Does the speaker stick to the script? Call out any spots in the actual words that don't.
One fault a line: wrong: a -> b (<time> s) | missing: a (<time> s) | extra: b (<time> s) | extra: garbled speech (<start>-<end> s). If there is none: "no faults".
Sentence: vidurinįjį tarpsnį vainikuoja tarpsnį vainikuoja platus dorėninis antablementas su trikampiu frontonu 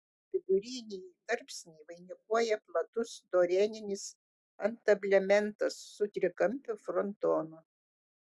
missing: tarpsnį vainikuoja (2.6 s)